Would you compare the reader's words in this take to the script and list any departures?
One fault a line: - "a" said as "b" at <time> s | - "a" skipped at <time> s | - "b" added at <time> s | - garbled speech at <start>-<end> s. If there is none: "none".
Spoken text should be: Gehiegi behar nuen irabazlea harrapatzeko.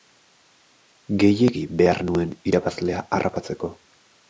none